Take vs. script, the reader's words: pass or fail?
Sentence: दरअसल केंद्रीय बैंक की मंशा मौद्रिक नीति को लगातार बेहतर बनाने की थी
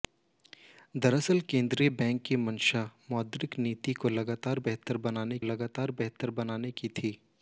fail